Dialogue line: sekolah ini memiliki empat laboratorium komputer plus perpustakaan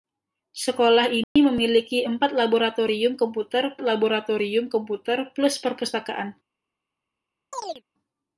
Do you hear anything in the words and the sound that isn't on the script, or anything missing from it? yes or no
yes